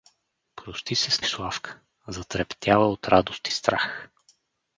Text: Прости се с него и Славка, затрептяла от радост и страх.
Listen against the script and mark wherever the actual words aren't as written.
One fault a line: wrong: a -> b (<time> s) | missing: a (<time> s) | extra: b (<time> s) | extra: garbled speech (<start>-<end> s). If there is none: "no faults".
missing: него (1.2 s)